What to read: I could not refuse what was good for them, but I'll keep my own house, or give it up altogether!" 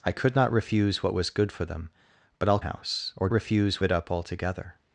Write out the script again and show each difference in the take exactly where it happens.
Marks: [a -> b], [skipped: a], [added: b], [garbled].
I could not refuse what was good for them, but I'll [skipped: keep my own] house, or [give -> refuse] it up altogether!"